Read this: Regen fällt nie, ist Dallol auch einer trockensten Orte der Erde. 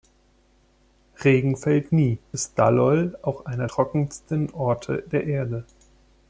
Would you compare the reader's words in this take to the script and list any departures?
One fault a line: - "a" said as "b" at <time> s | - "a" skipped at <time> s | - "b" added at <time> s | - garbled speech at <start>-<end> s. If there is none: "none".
none